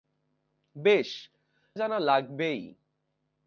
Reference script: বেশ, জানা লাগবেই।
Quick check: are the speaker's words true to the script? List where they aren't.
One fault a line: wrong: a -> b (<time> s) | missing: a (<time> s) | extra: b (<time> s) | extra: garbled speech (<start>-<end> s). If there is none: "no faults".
no faults